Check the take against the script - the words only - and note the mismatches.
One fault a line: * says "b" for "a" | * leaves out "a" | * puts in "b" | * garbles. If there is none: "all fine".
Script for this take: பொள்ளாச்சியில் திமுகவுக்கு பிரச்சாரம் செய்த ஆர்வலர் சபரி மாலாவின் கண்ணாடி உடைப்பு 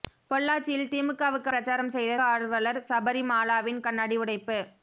all fine